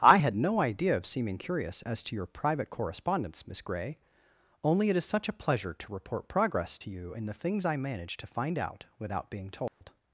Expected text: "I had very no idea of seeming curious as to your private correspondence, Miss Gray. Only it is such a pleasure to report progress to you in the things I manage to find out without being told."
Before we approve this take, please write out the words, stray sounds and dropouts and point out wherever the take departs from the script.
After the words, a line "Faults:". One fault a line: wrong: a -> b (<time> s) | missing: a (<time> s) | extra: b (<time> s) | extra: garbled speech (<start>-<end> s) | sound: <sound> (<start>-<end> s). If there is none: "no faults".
"I had no idea of seeming curious as to your private correspondence, Miss Gray. Only it is such a pleasure to report progress to you in the things I manage to find out without being told."
Faults:
missing: very (0.3 s)
sound: dropout (9.7-9.8 s)